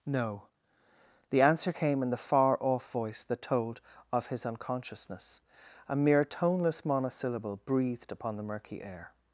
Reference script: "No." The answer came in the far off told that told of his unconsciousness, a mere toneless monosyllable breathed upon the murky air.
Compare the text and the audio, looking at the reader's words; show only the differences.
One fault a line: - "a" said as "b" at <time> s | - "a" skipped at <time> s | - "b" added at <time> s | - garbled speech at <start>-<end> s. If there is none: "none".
- "told" said as "voice" at 2.9 s